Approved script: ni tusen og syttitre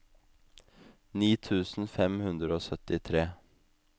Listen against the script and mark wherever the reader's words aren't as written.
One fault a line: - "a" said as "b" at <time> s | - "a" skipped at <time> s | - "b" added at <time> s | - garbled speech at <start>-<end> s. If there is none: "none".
- "fem hundre" added at 2.0 s